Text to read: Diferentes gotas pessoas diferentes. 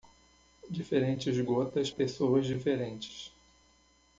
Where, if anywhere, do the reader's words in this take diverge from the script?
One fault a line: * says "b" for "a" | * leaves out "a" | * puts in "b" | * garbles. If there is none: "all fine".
all fine